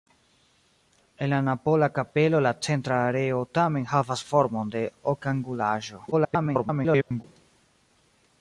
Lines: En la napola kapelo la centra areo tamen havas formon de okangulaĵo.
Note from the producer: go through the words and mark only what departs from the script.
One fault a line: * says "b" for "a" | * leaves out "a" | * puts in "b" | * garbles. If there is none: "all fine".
* garbles